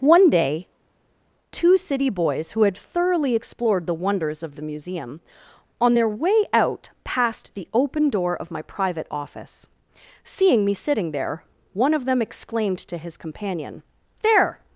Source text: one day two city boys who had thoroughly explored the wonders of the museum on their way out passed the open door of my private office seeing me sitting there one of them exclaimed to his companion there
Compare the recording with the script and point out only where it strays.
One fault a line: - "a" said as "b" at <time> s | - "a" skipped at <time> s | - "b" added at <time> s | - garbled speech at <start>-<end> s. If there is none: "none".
none